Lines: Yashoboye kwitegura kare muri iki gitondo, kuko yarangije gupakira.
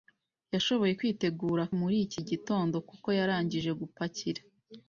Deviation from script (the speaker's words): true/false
true